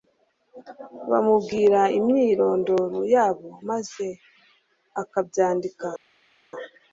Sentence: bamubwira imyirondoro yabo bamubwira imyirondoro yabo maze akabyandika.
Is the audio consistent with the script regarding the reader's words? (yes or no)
no